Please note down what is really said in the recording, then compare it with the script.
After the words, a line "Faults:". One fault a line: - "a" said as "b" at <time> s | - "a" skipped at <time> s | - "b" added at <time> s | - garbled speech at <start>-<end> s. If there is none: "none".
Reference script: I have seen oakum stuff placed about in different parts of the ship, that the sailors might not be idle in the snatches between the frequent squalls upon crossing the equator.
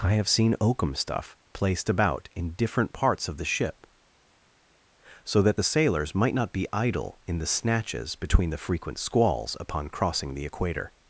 I have seen oakum stuff placed about in different parts of the ship, so that the sailors might not be idle in the snatches between the frequent squalls upon crossing the equator.
Faults:
- "so" added at 5.2 s